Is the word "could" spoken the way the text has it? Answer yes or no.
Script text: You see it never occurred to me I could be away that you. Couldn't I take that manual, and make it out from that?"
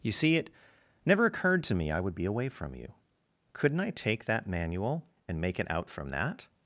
no